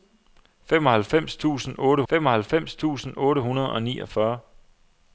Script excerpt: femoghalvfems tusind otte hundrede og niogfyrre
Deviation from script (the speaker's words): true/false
true